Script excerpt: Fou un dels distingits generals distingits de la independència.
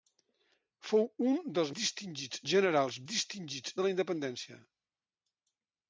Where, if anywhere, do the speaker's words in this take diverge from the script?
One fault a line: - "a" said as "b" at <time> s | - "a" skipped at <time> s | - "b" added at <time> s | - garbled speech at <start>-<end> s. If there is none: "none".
none